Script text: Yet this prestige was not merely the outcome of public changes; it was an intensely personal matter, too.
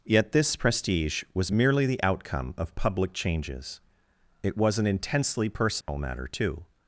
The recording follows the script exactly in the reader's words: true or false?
false